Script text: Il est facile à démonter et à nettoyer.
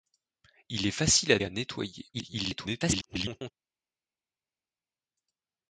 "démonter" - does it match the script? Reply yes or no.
no